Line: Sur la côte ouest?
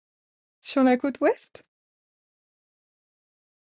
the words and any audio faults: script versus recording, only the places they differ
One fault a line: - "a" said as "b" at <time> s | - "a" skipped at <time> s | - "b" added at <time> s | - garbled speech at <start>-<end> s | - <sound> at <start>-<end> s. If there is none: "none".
none